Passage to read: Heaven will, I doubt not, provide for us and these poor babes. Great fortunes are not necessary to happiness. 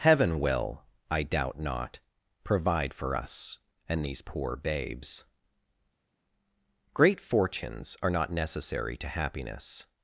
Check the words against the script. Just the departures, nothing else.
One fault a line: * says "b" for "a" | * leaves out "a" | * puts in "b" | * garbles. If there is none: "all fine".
all fine